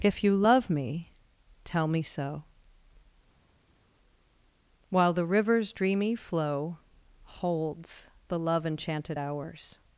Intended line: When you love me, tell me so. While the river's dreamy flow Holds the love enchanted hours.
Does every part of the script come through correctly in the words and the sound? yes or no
no